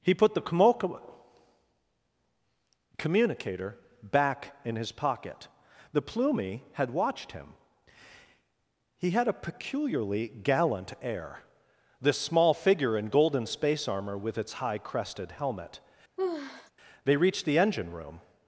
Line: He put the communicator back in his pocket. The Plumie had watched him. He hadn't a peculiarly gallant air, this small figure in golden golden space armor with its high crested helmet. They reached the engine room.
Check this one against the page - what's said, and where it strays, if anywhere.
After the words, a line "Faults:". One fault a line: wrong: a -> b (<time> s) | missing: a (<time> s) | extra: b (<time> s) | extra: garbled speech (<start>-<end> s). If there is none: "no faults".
He put the communicator back in his pocket. The Plumie had watched him. He had a peculiarly gallant air, this small figure in golden space armor with its high crested helmet. They reached the engine room.
Faults:
wrong: hadn't -> had (9.1 s)
missing: golden (13.4 s)